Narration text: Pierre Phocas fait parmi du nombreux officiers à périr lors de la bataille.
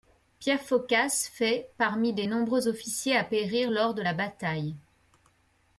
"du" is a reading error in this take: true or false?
true